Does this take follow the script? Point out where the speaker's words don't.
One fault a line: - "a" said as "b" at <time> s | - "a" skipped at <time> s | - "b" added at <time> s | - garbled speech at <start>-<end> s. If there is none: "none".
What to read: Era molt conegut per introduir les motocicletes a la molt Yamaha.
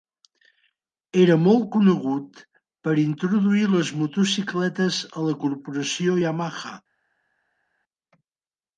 - "molt" said as "corporació" at 5.4 s